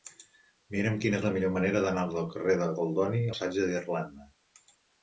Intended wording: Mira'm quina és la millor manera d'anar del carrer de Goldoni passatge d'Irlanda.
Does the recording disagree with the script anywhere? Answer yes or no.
no